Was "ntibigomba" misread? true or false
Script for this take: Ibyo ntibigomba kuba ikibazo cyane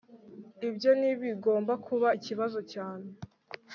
false